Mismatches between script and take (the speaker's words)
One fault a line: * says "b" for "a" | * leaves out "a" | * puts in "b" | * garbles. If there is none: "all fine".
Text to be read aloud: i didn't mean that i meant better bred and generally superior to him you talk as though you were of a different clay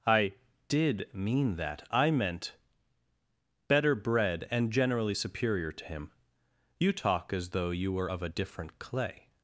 * says "did" for "didn't"